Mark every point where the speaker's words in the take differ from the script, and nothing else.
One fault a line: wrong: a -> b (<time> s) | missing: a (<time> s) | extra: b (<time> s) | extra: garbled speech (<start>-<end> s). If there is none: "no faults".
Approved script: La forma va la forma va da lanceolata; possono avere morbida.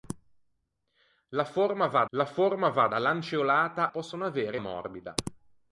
no faults